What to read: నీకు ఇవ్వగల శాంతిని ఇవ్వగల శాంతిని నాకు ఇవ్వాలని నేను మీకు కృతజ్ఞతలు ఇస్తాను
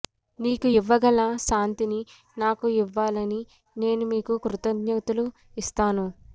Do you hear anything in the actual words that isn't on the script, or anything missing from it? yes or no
yes